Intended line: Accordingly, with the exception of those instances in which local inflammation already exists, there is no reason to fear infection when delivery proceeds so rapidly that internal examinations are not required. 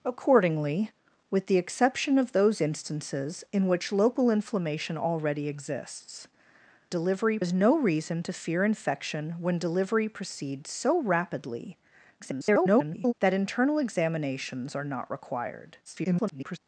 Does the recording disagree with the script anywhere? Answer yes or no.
yes